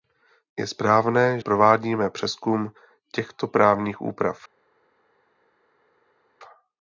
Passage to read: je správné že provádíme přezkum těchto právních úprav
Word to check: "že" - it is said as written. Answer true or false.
false